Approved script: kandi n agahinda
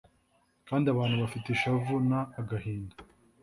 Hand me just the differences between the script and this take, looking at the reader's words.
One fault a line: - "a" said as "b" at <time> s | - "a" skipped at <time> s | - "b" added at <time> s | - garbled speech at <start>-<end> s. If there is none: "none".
- "abantu bafite ishavu" added at 0.9 s